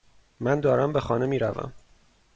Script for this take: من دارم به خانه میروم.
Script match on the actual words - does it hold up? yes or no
yes